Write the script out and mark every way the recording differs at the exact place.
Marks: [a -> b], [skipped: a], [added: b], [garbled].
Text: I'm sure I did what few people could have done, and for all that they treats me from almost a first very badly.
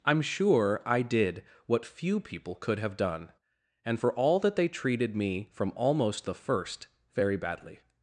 I'm sure I did what few people could have done, and for all that they [treats -> treated] me from almost [a -> the] first very badly.